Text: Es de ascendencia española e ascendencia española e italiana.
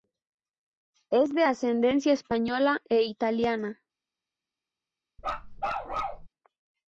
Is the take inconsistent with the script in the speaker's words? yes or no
yes